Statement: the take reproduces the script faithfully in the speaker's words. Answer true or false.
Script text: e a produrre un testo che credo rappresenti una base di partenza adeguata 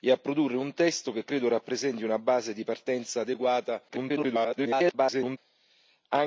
false